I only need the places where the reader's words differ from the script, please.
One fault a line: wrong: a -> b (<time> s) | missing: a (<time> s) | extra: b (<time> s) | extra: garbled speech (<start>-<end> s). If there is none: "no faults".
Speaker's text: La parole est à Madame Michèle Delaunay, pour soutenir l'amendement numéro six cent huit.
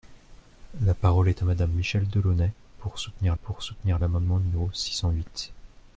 extra: pour soutenir (3.4 s)